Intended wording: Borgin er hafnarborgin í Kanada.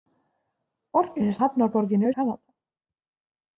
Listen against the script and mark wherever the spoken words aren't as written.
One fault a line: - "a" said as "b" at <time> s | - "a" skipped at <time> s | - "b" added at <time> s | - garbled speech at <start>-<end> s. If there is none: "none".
none